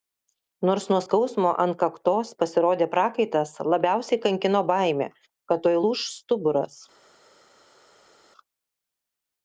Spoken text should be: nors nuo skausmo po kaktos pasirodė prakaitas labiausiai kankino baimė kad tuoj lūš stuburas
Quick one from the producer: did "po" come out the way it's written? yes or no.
no